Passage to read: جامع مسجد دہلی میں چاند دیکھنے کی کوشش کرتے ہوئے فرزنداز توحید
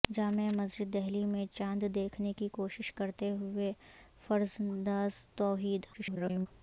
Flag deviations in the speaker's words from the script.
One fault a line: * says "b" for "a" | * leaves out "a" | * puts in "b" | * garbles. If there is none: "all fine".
* garbles